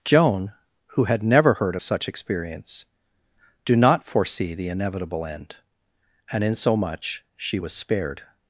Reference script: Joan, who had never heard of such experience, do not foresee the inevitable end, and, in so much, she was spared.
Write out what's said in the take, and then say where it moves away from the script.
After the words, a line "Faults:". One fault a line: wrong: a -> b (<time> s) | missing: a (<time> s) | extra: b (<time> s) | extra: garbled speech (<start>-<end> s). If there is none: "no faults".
Joan, who had never heard of such experience, do not foresee the inevitable end, and, in so much, she was spared.
Faults:
no faults